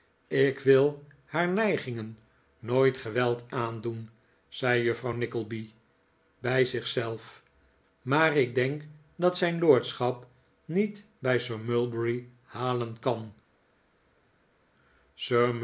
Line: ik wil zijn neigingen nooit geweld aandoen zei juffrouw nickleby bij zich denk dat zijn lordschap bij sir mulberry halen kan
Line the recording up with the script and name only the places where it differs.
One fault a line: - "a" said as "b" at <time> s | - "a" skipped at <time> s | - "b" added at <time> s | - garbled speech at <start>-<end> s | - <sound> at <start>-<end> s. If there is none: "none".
- "zijn" said as "haar" at 1.2 s
- "zelf maar ik" added at 6.9 s
- "niet" added at 10.6 s